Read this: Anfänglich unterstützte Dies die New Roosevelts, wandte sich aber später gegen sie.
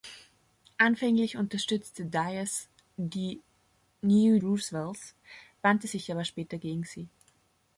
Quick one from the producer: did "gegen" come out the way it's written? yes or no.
yes